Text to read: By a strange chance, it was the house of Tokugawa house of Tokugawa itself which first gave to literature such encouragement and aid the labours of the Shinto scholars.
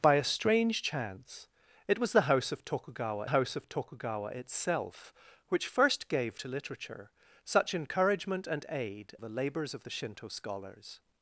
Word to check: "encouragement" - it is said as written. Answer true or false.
true